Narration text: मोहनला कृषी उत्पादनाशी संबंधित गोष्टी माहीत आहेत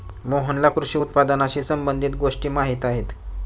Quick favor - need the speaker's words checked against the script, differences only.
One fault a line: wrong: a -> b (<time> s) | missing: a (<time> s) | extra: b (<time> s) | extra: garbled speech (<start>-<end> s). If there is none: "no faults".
no faults